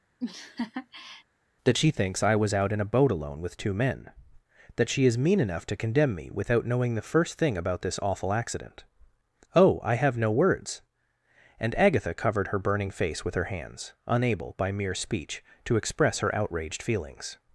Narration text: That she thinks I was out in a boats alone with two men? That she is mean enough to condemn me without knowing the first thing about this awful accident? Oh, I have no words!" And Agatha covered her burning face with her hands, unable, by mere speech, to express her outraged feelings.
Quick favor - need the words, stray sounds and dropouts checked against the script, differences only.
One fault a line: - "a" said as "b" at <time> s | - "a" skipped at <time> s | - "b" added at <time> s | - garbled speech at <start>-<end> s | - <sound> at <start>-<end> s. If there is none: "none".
- laugh at 0.2-1.2 s
- "boats" said as "boat" at 2.9 s